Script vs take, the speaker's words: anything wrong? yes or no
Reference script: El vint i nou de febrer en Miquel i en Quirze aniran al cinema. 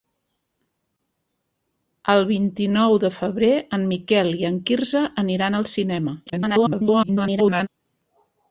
yes